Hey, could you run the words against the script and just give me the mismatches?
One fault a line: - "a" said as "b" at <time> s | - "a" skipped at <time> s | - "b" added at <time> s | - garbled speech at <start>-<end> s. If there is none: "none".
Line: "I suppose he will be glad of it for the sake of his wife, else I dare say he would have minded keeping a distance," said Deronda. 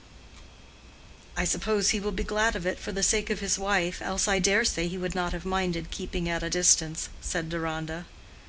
- "not" added at 5.1 s
- "at" added at 6.3 s